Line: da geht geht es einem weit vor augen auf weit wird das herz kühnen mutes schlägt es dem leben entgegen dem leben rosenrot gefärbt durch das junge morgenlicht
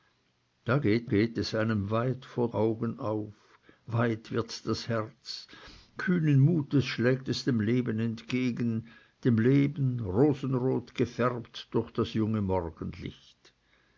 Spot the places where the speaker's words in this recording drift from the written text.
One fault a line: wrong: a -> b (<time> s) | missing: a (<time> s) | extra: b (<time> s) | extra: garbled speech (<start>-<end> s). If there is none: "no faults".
no faults